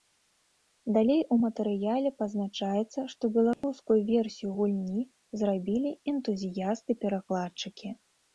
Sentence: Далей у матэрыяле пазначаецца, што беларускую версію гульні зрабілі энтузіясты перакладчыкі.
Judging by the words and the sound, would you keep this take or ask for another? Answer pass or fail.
fail